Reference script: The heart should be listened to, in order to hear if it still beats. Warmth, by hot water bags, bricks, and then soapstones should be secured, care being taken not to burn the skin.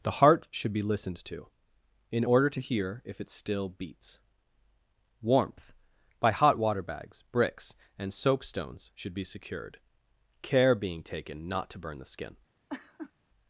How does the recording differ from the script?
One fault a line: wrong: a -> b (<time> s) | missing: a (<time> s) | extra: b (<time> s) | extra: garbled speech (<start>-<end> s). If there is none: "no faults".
missing: then (8.1 s)